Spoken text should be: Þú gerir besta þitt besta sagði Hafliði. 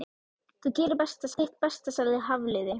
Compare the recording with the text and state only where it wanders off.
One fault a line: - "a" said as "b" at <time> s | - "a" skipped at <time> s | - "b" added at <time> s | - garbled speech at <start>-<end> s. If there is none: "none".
none